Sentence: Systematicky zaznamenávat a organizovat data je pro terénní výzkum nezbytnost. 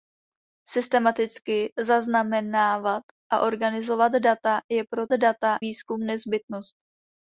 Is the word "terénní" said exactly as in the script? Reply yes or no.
no